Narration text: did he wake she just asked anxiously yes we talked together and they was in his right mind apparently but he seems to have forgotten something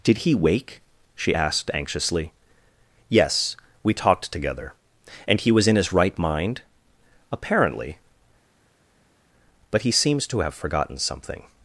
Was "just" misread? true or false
true